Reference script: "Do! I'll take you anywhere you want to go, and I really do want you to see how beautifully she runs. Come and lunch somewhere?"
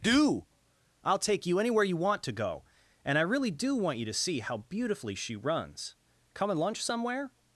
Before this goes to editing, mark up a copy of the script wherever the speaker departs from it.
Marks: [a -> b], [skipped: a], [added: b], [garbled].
"Do! I'll take you anywhere you want to go, and I really do want you to see how beautifully she runs. Come and lunch somewhere?"